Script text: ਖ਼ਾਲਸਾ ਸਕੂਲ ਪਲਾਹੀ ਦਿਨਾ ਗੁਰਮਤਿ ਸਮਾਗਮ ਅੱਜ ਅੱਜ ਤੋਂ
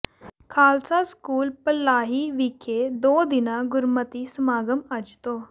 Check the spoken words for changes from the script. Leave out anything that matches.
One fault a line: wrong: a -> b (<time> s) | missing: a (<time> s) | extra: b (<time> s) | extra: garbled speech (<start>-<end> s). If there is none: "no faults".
extra: ਵਿਖੇ ਦੋ (2.3 s)
missing: ਅੱਜ (5.2 s)